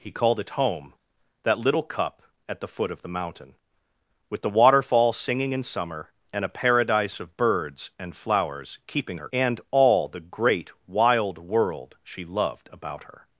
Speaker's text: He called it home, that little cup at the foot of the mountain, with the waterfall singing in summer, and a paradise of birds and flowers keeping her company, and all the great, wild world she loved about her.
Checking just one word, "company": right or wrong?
wrong